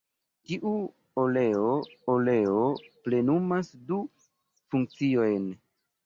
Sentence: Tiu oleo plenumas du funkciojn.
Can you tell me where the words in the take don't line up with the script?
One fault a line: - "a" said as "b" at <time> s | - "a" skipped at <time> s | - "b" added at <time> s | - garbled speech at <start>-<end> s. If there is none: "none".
- "oleo" added at 2.2 s